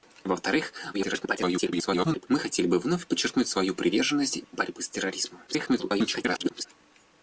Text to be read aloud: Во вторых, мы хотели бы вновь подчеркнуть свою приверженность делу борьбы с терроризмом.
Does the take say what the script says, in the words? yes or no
no